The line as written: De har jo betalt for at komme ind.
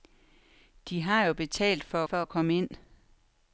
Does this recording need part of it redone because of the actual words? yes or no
yes